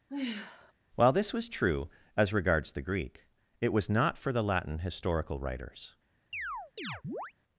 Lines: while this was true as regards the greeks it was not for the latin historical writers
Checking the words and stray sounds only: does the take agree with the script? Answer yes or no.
no